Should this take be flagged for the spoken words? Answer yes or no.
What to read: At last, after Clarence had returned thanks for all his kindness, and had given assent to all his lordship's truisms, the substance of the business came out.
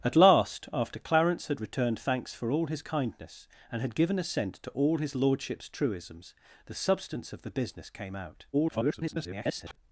yes